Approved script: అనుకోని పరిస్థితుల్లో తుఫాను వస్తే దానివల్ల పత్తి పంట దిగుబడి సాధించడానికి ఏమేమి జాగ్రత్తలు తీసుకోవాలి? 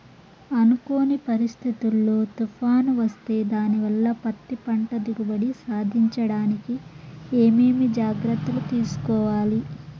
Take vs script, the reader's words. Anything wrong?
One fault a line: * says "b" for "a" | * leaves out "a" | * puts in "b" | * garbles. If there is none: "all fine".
all fine